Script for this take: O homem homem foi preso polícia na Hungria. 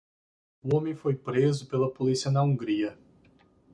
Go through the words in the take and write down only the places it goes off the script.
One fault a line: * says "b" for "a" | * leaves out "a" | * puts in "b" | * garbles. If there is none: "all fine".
* leaves out "homem"
* puts in "pela"